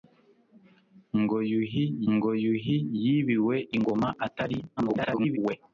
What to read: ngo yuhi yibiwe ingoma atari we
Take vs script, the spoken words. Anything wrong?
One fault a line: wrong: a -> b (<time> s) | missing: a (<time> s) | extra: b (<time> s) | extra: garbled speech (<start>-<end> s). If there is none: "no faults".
extra: ngo yuhi (2.1 s)
extra: garbled speech (4.8-5.4 s)